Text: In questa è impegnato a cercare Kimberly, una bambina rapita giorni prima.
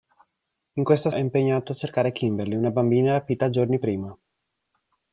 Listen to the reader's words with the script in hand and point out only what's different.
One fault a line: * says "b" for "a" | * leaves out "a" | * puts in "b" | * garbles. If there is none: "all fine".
all fine